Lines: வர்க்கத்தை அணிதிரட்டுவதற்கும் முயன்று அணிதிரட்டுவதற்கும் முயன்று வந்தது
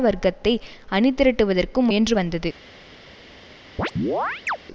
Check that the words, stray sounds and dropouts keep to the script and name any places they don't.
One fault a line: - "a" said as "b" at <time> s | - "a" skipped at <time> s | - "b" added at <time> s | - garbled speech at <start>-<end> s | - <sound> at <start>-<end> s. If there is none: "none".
- "அணிதிரட்டுவதற்கும் முயன்று" skipped at 2.1 s
- chirp at 3.8-4.6 s